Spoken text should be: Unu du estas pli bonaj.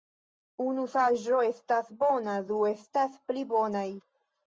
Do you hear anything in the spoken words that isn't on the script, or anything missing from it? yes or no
yes